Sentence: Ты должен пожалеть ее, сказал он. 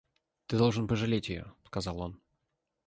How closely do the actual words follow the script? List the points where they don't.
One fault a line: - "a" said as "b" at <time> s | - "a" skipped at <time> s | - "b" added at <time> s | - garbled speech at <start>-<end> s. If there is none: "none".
none